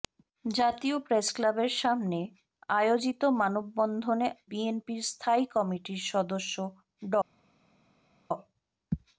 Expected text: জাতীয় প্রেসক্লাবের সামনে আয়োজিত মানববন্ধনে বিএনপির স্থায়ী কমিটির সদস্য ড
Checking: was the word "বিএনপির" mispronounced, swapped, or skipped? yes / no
no